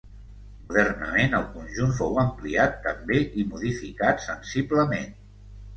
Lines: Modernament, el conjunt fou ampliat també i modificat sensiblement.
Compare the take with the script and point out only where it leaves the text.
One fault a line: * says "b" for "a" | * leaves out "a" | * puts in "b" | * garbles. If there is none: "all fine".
all fine